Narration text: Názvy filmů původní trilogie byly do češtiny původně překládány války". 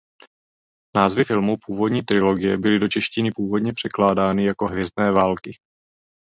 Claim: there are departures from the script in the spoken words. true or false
true